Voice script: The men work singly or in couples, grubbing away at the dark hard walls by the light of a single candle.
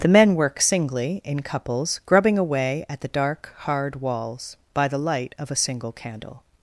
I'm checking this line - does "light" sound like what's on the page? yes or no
yes